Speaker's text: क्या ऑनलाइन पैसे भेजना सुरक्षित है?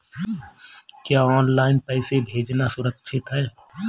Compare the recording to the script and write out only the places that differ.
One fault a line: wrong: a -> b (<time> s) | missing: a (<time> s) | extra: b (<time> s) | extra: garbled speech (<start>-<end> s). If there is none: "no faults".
no faults